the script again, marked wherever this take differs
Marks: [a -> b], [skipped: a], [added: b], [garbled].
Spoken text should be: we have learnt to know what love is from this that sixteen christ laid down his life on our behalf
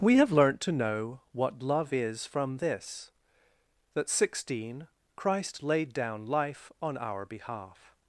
we have learnt to know what love is from this that sixteen christ laid down [skipped: his] life on our behalf